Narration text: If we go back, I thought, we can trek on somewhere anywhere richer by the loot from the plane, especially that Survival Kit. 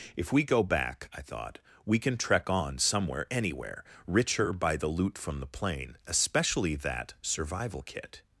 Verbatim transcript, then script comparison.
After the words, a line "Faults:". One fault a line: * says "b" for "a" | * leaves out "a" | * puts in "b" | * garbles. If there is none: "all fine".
If we go back, I thought, we can trek on somewhere anywhere richer by the loot from the plane, especially that Survival Kit.
Faults:
all fine